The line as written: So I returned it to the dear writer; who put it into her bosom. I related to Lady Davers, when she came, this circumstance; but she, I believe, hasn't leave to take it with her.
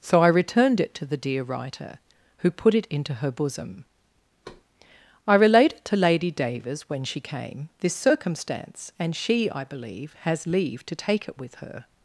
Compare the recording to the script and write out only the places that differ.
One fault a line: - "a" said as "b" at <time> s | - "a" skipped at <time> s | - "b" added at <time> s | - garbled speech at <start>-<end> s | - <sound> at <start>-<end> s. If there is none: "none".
- thud at 4.4-4.6 s
- "but" said as "and" at 9.0 s
- "hasn't" said as "has" at 10.2 s